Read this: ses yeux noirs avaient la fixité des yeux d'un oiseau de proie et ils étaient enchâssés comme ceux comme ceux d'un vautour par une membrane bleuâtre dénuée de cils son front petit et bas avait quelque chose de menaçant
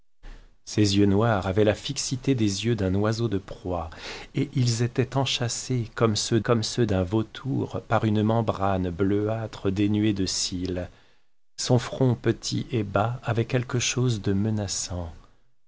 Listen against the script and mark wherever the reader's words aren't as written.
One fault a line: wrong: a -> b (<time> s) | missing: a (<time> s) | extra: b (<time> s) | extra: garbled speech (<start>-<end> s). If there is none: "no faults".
no faults